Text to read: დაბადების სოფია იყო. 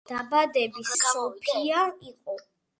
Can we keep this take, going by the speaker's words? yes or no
yes